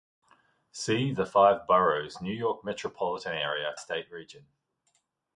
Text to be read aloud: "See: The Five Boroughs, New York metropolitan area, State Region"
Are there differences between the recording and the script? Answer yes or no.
no